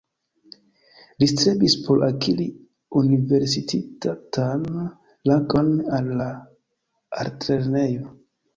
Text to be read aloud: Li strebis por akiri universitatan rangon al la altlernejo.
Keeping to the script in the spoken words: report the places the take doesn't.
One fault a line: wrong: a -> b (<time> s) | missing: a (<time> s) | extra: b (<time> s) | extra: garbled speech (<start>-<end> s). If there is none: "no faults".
no faults